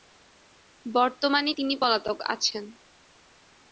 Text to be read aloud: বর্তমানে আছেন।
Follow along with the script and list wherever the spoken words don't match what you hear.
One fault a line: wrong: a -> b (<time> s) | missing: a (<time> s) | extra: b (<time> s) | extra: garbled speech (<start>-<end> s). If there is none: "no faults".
extra: তিনি পলাতক (1.5 s)